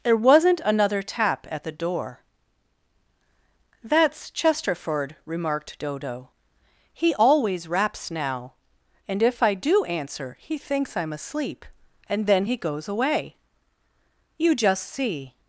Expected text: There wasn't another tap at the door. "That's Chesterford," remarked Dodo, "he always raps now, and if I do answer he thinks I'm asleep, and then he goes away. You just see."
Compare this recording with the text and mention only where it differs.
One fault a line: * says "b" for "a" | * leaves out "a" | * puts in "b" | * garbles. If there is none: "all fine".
all fine